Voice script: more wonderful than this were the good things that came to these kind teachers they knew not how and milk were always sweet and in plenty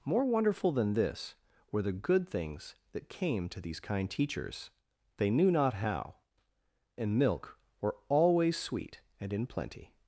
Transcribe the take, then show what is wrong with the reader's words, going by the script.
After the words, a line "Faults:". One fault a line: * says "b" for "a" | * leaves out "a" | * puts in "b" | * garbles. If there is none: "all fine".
more wonderful than this were the good things that came to these kind teachers they knew not how and milk were always sweet and in plenty
Faults:
all fine